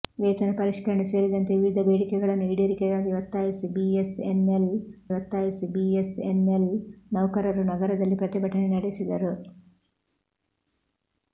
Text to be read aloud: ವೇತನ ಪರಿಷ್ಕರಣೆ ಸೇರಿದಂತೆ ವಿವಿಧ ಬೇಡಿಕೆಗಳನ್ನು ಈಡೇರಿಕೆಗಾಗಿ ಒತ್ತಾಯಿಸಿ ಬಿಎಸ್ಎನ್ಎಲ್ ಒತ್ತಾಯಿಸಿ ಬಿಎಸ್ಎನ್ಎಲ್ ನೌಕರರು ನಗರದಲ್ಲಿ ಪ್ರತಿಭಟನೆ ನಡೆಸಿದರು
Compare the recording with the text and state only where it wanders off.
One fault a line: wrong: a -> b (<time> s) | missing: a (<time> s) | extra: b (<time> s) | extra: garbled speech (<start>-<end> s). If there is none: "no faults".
no faults